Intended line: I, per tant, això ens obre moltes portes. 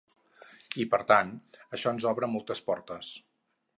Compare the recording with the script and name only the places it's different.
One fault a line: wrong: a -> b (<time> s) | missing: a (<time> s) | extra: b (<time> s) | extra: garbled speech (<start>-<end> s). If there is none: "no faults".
no faults